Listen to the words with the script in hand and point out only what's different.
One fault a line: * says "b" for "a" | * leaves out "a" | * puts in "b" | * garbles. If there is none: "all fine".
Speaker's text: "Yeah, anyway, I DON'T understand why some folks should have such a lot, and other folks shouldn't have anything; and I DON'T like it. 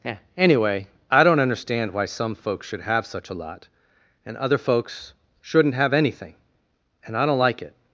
all fine